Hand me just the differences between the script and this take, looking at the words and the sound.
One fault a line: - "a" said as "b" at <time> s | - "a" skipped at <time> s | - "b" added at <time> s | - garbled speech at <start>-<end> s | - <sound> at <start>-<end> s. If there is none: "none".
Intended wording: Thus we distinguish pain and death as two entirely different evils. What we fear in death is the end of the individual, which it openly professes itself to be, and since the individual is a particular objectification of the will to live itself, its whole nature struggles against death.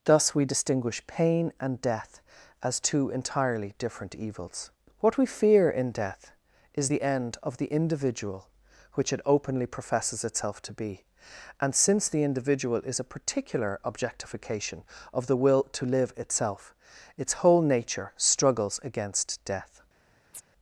- chirp at 20.3-20.4 s